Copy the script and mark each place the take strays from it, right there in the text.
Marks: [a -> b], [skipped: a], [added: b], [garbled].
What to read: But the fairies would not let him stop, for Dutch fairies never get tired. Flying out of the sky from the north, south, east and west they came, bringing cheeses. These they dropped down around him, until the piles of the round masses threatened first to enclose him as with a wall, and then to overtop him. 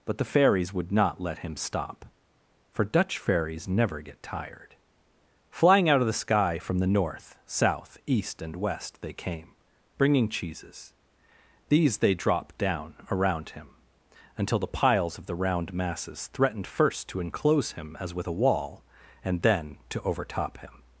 But the fairies would not let him stop, for Dutch fairies never get tired. Flying out of the sky from the north, south, east and west they came, bringing cheeses. These they dropped down around him, until the piles of the round masses threatened first to enclose him as with a wall, and then to overtop him.